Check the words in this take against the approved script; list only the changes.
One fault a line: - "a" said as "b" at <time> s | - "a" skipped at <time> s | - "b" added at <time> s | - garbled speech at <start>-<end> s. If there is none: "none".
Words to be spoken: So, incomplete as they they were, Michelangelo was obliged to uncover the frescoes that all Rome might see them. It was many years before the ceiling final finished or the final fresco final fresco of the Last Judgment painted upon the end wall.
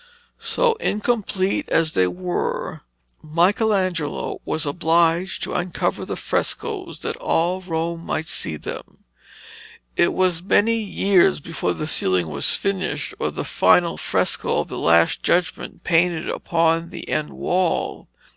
- "they" skipped at 2.1 s
- "final" said as "was" at 12.3 s
- "final fresco" skipped at 14.6 s